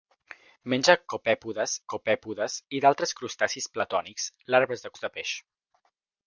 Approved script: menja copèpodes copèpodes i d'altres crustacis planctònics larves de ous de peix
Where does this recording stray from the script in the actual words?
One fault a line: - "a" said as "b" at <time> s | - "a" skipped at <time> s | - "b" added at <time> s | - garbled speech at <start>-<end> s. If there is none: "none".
none